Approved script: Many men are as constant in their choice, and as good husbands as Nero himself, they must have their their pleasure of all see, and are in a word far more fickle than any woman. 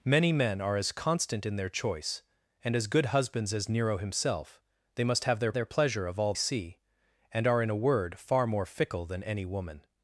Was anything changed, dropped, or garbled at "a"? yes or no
no